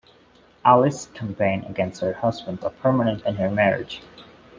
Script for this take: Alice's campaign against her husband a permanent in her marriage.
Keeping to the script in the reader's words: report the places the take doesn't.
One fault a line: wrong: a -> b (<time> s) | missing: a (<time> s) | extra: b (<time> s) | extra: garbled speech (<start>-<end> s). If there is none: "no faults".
no faults